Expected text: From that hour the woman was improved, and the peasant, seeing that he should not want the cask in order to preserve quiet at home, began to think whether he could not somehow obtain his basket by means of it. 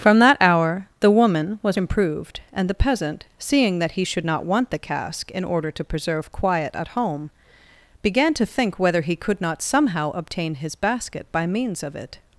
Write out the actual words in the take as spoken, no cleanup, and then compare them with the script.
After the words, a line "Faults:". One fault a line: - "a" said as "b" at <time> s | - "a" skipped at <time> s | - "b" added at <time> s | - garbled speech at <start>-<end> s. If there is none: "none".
From that hour the woman was improved, and the peasant, seeing that he should not want the cask in order to preserve quiet at home, began to think whether he could not somehow obtain his basket by means of it.
Faults:
none